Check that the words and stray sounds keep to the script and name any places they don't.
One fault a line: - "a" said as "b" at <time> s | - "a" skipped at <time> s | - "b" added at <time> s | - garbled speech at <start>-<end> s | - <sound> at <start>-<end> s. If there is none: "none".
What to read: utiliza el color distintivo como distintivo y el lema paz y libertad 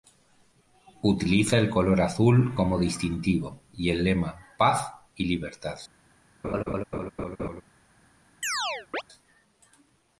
- "distintivo" said as "azul" at 2.0 s
- laugh at 6.4-7.6 s
- chirp at 8.4-9.0 s